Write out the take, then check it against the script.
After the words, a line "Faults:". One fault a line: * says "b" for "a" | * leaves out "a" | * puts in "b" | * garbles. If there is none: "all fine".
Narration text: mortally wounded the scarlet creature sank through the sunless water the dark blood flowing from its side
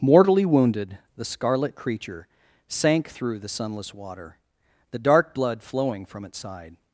mortally wounded the scarlet creature sank through the sunless water the dark blood flowing from its side
Faults:
all fine